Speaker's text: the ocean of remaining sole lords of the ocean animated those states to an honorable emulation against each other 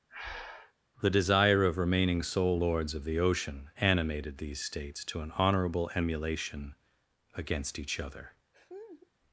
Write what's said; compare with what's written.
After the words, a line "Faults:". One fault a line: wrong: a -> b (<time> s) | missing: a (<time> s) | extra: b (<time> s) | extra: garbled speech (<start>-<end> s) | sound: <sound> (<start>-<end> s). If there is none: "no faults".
the desire of remaining sole lords of the ocean animated these states to an honorable emulation against each other
Faults:
sound: breath (0.1-0.7 s)
wrong: ocean -> desire (1.1 s)
wrong: those -> these (4.4 s)
sound: laugh (8.5-9.1 s)